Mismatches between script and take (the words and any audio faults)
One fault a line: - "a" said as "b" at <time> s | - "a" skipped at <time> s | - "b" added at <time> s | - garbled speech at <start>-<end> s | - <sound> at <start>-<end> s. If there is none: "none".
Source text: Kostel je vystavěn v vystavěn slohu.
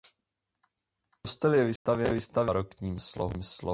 - dropout at 1.8-1.9 s
- "vystavěn" said as "barokním" at 2.3 s